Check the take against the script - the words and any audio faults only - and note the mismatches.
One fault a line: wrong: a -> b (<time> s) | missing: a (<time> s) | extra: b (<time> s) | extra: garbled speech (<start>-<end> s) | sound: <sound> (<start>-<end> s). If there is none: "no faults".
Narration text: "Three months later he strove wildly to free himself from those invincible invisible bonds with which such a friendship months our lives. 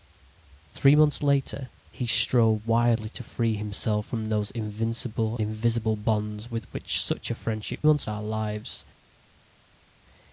no faults